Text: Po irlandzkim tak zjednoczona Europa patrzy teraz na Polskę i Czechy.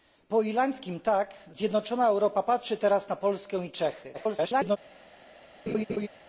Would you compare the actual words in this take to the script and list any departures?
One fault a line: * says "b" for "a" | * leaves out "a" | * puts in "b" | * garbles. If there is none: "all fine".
* garbles